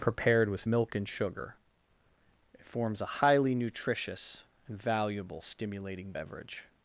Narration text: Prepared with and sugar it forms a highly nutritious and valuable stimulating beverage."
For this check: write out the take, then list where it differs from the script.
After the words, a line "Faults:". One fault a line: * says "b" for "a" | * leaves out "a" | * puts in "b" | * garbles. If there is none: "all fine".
Prepared with milk and sugar it forms a highly nutritious and valuable stimulating beverage."
Faults:
* puts in "milk"